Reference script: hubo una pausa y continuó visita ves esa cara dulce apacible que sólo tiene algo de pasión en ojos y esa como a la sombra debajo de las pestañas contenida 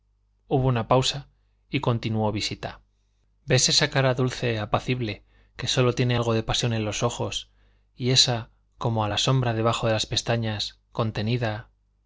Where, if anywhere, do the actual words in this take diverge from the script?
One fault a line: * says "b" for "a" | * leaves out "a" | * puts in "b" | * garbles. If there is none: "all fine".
* puts in "los"